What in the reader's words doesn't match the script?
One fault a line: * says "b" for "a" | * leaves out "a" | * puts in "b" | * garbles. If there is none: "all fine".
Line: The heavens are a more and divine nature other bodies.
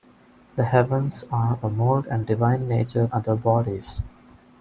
all fine